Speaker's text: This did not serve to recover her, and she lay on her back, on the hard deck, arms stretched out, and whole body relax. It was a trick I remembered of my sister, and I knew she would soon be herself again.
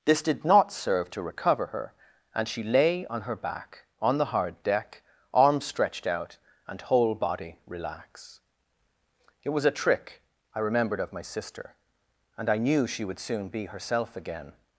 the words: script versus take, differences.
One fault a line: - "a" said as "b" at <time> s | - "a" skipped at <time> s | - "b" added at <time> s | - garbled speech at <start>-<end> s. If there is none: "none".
none